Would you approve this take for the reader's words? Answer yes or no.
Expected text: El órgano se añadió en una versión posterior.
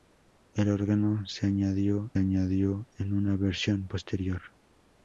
no